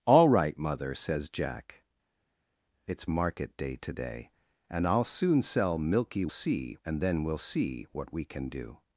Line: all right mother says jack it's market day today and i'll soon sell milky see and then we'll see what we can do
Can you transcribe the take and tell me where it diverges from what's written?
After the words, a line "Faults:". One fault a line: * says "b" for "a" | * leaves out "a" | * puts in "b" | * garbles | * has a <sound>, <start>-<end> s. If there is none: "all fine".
all right mother says jack it's market day today and i'll soon sell milky see and then we'll see what we can do
Faults:
all fine